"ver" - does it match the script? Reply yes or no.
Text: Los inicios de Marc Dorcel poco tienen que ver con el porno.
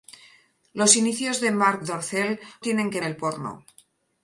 no